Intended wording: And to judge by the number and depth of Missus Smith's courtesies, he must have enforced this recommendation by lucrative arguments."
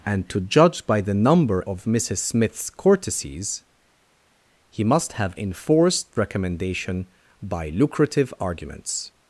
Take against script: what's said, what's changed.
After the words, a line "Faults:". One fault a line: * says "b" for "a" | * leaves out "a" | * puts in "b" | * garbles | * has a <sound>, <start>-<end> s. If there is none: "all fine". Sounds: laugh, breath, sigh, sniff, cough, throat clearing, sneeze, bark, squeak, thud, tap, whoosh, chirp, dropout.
And to judge by the number of Missus Smith's courtesies, he must have enforced recommendation by lucrative arguments."
Faults:
* leaves out "and depth"
* leaves out "this"